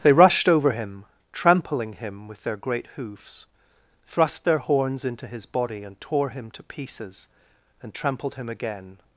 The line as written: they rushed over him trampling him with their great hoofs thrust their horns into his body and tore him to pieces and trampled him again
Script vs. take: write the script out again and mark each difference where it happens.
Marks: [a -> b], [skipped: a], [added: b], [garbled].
they rushed over him trampling him with their great hoofs thrust their horns into his body and tore him to pieces and trampled him again